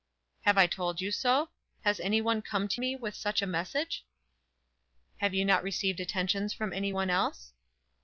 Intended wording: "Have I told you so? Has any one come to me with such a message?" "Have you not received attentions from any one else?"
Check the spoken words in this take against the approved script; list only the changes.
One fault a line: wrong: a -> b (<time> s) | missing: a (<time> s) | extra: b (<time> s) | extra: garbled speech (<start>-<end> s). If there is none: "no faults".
no faults